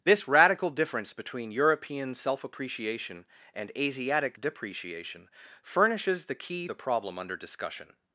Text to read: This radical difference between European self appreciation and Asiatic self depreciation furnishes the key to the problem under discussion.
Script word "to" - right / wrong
wrong